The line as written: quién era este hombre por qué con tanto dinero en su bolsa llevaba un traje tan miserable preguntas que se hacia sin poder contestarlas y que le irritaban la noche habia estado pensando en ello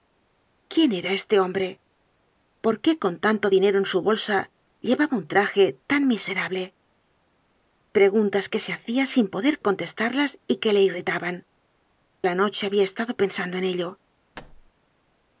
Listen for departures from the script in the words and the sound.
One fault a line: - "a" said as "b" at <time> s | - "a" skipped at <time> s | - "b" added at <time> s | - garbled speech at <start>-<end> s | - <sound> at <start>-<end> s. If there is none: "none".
- thud at 14.3-14.7 s